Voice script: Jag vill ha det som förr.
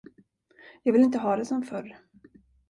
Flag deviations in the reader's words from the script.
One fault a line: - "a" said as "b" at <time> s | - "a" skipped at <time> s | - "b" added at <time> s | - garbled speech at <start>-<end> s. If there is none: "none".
- "inte" added at 1.0 s